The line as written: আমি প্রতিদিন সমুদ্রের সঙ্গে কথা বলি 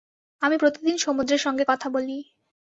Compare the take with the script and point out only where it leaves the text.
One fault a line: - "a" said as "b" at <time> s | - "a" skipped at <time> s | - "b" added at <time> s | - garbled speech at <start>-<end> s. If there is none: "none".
none